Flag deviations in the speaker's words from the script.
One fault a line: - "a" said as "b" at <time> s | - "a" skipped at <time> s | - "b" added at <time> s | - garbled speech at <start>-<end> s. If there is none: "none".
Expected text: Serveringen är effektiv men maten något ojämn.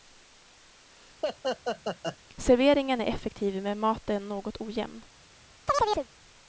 none